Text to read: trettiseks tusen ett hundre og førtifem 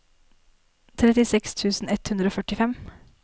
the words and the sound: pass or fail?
pass